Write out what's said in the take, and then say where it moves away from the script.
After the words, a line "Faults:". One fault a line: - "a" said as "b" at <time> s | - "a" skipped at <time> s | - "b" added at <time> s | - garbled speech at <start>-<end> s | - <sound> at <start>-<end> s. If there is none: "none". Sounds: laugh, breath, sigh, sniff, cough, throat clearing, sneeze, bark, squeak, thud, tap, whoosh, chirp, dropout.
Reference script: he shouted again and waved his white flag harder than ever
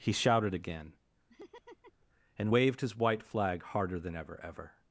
he shouted again and waved his white flag harder than ever ever
Faults:
- laugh at 1.3-2.1 s
- "ever" added at 4.4 s